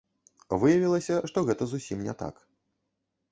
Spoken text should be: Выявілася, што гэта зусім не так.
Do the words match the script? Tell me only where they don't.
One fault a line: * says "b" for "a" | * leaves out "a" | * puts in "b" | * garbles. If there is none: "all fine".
all fine